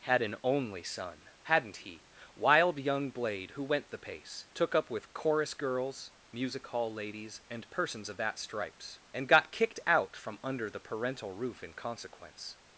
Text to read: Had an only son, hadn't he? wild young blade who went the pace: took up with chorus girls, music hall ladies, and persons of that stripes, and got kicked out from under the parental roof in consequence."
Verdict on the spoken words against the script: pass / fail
pass